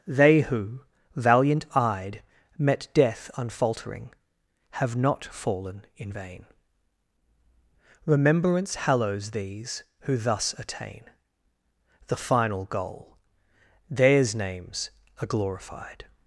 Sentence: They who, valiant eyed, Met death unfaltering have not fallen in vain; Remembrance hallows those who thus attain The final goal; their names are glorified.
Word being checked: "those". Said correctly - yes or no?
no